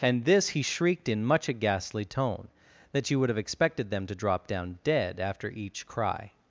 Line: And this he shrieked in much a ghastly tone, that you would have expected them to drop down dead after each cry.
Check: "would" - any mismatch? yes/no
no